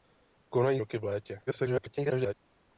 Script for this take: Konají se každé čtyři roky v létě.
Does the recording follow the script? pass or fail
fail